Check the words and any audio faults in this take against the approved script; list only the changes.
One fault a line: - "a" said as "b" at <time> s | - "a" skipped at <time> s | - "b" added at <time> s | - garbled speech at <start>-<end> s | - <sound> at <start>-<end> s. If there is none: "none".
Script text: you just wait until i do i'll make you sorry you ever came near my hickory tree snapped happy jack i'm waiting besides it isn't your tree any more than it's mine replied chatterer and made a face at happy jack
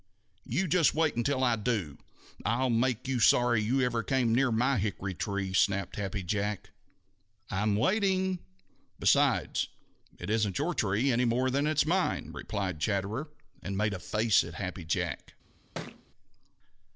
- thud at 15.7-16.0 s